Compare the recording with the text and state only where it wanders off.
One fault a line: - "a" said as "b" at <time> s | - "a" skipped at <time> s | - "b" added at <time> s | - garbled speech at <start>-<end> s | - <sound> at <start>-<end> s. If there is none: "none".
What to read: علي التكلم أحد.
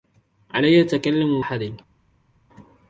none